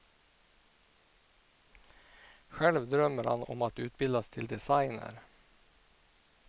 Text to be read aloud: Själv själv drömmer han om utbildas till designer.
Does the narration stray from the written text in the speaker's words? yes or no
yes